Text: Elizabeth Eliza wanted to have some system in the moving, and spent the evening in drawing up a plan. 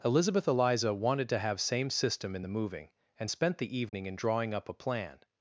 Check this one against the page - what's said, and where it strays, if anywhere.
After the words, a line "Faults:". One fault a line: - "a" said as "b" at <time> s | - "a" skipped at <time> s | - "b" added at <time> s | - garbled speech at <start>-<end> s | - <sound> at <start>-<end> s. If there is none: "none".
Elizabeth Eliza wanted to have same system in the moving, and spent the evening in drawing up a plan.
Faults:
- "some" said as "same" at 1.6 s
- dropout at 3.9-3.9 s